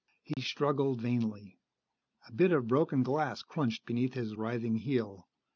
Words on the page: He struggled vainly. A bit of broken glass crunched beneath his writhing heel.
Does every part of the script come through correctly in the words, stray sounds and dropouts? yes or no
no